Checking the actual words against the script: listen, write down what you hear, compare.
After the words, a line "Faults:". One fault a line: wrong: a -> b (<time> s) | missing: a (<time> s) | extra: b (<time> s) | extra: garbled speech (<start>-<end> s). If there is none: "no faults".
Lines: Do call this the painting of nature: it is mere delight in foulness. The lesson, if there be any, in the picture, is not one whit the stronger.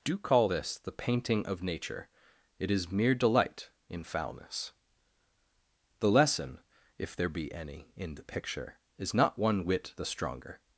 Do call this the painting of nature: it is mere delight in foulness. The lesson, if there be any, in the picture, is not one whit the stronger.
Faults:
no faults